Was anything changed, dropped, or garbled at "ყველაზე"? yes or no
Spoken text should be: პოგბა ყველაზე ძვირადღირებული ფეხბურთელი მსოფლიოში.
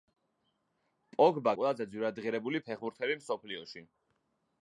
no